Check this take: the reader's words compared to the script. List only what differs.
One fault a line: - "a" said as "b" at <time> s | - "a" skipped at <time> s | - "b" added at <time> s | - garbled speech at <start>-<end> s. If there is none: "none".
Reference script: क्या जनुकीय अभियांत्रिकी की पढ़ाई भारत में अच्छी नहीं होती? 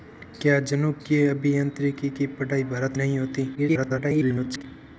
- "में अच्छी" skipped at 3.0 s
- garbled speech at 3.5-4.6 s